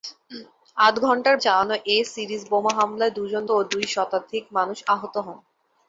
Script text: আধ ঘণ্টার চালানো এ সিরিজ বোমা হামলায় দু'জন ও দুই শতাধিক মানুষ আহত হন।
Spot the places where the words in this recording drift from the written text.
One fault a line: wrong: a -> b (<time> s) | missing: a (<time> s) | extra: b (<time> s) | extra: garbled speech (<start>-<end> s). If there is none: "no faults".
no faults